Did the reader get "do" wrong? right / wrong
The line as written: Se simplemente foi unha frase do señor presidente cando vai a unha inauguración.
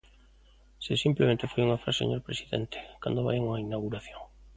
wrong